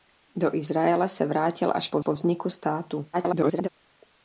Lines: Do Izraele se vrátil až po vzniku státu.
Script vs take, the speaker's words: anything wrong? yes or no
yes